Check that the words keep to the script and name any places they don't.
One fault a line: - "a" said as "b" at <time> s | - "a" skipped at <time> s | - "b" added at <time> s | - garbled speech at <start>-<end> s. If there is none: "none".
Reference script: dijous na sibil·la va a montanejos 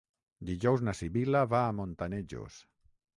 none